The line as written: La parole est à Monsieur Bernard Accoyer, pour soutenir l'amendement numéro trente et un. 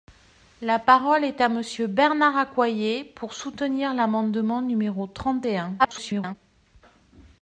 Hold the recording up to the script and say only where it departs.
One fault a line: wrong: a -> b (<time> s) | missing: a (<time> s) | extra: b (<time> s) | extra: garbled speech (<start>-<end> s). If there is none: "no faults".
extra: garbled speech (5.8-6.4 s)